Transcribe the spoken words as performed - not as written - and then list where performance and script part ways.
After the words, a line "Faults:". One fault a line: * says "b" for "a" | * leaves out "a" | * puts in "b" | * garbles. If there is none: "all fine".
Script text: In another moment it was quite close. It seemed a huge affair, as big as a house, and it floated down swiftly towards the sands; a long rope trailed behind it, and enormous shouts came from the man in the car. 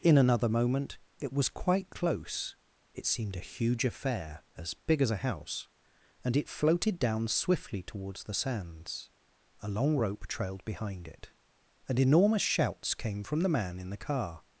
In another moment it was quite close. It seemed a huge affair, as big as a house, and it floated down swiftly towards the sands; a long rope trailed behind it, and enormous shouts came from the man in the car.
Faults:
all fine